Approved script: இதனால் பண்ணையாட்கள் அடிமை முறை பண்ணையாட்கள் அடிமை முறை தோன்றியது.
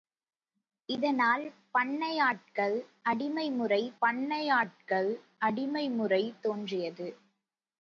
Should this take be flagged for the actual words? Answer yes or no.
no